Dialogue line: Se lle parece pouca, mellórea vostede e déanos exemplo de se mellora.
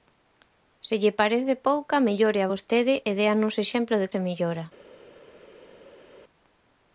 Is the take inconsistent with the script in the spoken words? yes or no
no